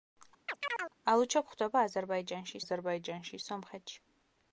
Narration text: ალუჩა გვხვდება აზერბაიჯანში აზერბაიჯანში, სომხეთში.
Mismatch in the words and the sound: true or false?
true